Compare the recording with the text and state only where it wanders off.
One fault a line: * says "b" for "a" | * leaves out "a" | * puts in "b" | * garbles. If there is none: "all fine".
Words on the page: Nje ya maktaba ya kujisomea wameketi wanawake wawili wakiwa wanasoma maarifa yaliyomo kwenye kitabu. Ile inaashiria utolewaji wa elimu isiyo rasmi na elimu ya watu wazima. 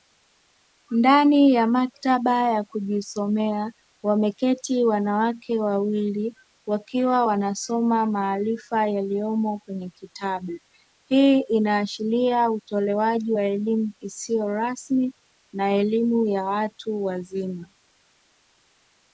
* says "Ndani" for "Nje"
* says "Hii" for "Ile"